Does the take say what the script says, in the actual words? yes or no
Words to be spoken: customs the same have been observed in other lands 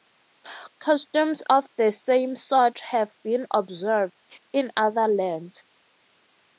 no